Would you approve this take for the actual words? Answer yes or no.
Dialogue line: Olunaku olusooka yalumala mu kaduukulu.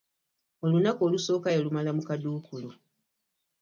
yes